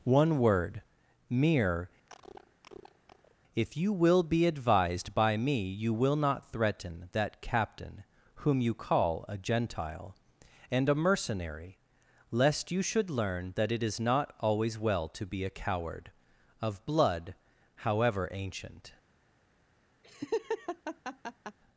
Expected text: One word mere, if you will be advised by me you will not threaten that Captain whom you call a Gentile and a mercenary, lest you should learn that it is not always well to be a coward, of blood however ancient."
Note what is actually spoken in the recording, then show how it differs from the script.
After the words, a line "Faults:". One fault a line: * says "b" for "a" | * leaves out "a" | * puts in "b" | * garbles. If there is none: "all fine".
One word mere, if you will be advised by me you will not threaten that Captain whom you call a Gentile and a mercenary, lest you should learn that it is not always well to be a coward, of blood however ancient."
Faults:
all fine